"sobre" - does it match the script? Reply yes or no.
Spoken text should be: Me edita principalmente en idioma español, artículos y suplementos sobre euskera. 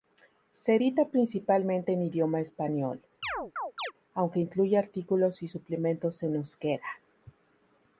no